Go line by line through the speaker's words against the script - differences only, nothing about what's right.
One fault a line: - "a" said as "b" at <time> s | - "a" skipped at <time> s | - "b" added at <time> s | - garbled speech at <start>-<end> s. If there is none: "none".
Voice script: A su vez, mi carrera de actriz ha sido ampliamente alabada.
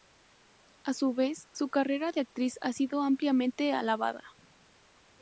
- "mi" said as "su" at 1.5 s